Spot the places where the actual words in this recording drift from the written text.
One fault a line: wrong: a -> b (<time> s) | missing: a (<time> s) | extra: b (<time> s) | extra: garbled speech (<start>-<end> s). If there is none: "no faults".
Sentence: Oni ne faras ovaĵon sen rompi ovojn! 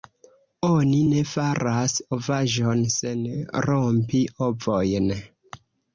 no faults